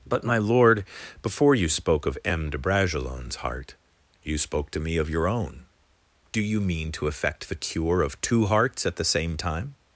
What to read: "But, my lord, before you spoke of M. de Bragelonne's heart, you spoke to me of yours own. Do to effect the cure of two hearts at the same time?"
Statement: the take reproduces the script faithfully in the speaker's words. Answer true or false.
false